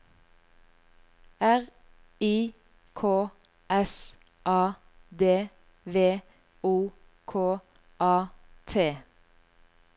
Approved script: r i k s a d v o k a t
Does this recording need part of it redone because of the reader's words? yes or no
no